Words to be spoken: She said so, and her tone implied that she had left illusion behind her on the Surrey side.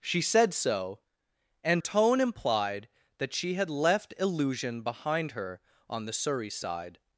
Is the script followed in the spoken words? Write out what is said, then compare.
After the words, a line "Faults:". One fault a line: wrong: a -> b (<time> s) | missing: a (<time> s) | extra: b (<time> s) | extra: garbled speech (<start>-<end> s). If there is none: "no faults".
She said so, and tone implied that she had left illusion behind her on the Surrey side.
Faults:
missing: her (1.8 s)